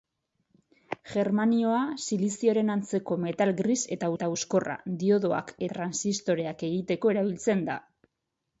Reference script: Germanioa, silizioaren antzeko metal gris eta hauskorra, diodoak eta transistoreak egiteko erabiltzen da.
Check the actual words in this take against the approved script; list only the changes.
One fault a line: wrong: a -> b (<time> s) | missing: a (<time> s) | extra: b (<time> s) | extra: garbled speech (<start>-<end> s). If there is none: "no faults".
extra: eta (4.2 s)
missing: eta (5.6 s)